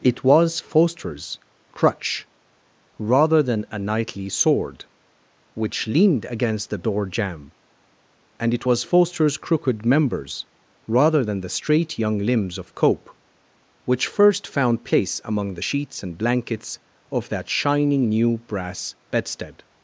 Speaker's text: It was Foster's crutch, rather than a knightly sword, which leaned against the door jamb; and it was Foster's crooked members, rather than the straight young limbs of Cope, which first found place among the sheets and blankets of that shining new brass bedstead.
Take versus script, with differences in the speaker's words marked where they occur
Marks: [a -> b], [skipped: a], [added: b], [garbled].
It was Foster's crutch, rather than a knightly sword, which leaned against the door jamb; and it was Foster's crooked members, rather than the straight young limbs of Cope, which first found place among the sheets and blankets of that shining new brass bedstead.